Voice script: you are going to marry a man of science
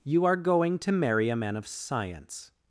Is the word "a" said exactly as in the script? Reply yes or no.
yes